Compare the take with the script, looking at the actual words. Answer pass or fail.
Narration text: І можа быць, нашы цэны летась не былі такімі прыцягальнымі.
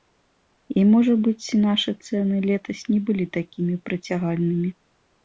pass